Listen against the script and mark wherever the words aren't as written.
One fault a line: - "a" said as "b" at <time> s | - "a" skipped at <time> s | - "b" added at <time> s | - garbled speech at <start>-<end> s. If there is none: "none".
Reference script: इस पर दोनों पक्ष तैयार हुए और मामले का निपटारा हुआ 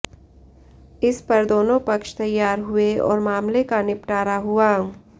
none